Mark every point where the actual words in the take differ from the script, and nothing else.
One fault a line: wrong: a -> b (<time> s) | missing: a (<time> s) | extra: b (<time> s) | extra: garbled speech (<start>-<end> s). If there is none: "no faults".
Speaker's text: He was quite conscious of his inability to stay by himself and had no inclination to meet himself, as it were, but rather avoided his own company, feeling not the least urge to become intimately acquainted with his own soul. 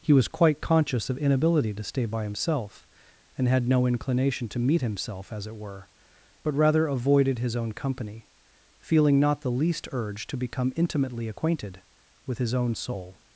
missing: his (1.2 s)